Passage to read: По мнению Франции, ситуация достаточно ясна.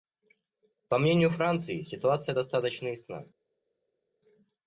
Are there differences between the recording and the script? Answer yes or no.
no